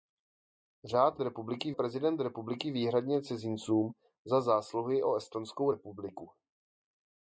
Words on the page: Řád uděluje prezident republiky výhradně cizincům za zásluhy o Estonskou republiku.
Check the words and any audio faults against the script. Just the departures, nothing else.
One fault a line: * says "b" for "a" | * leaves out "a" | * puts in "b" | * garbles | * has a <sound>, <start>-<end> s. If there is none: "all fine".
* says "republiky" for "uděluje"